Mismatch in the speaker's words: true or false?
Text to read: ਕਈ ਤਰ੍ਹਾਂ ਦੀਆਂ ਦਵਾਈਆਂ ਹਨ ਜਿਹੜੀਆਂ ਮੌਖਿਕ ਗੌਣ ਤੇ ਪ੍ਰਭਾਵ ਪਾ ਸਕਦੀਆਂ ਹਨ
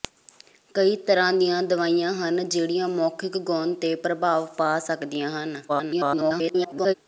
true